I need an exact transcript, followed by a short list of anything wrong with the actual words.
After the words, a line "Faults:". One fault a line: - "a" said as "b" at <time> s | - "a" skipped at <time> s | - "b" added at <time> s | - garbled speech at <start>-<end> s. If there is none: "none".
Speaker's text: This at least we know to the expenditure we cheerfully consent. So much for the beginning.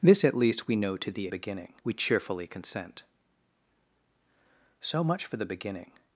This at least we know to the beginning we cheerfully consent. So much for the beginning.
Faults:
- "expenditure" said as "beginning" at 1.3 s